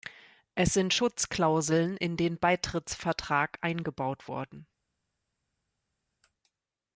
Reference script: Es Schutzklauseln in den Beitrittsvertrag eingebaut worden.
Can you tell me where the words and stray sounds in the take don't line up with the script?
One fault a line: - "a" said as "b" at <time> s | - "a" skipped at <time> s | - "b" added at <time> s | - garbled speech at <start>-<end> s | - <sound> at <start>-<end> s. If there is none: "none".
- "sind" added at 0.7 s